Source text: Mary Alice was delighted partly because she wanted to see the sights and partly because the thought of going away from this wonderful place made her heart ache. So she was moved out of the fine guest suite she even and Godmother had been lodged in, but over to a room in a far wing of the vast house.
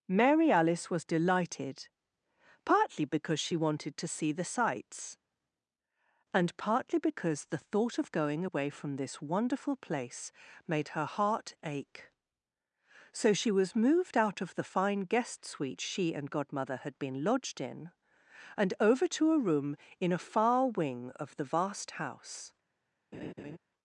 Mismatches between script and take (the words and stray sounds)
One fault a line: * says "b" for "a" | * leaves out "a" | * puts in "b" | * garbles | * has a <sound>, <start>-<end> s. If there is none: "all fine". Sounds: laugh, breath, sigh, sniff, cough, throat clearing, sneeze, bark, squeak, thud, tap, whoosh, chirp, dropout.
* leaves out "even"
* says "and" for "but"
* has a laugh, 23.1-23.6 s